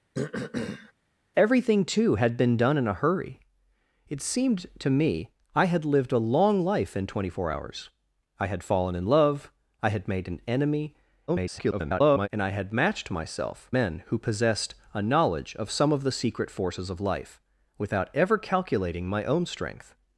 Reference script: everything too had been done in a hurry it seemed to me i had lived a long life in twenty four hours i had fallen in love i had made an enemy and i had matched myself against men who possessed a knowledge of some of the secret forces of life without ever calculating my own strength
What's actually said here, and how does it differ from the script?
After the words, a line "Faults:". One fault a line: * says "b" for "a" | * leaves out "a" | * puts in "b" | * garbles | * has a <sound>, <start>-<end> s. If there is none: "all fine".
everything too had been done in a hurry it seemed to me i had lived a long life in twenty four hours i had fallen in love i had made an enemy [garbled] and i had matched myself men who possessed a knowledge of some of the secret forces of life without ever calculating my own strength
Faults:
* has a throat clearing, 0.1-0.9 s
* garbles
* leaves out "against"